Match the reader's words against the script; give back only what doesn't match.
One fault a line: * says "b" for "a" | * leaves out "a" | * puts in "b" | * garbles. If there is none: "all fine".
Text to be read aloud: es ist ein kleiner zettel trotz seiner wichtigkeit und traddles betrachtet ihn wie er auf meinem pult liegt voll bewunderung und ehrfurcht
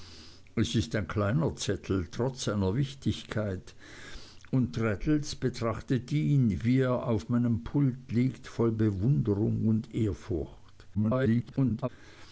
* garbles